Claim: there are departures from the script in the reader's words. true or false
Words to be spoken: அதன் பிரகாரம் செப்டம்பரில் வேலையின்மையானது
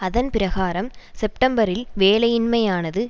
false